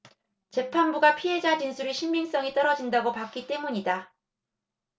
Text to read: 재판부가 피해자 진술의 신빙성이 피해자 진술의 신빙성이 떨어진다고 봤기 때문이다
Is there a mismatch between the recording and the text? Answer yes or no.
yes